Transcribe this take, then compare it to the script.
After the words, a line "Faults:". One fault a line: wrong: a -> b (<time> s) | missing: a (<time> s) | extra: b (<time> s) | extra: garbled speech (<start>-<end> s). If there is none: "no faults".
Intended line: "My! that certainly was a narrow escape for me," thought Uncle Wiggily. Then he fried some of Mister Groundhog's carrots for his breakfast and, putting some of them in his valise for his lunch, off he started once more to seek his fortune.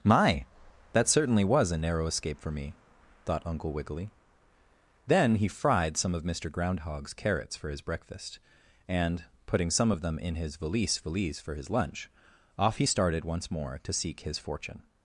"My! that certainly was a narrow escape for me," thought Uncle Wiggily. Then he fried some of Mister Groundhog's carrots for his breakfast and, putting some of them in his valise valise for his lunch, off he started once more to seek his fortune.
Faults:
extra: valise (11.0 s)